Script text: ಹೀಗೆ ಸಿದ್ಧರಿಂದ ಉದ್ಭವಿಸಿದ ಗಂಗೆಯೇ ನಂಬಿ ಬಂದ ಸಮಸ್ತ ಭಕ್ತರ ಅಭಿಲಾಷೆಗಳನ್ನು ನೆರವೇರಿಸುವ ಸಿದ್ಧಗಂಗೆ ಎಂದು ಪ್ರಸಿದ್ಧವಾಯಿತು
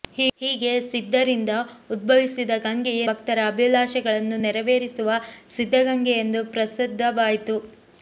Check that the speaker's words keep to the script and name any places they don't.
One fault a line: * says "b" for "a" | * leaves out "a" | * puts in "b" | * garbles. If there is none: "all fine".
* leaves out "ನಂಬಿ ಬಂದ ಸಮಸ್ತ"